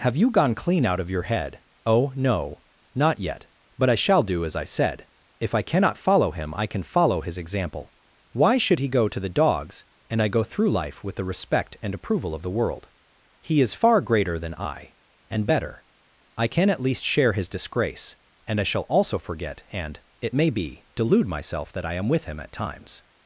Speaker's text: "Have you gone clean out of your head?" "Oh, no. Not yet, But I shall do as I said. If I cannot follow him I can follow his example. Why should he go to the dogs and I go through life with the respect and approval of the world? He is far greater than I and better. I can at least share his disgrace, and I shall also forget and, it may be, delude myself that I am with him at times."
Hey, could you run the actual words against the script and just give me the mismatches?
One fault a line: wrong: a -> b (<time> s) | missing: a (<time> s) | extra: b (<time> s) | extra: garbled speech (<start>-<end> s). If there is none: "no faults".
no faults